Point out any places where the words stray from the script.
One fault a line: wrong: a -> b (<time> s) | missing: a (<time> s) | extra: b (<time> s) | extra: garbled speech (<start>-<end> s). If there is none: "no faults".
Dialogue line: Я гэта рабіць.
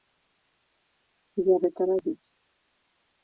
no faults